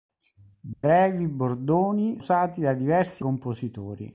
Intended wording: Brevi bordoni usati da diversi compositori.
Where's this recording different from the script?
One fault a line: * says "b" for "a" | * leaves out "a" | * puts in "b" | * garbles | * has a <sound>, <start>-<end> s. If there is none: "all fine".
* has a dropout, 0.7-0.8 s